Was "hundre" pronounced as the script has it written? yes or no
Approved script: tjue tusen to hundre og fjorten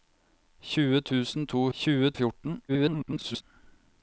no